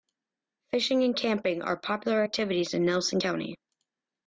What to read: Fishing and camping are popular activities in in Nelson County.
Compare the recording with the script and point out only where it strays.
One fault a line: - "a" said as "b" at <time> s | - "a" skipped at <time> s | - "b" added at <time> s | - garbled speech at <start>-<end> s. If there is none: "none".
- "in" skipped at 2.8 s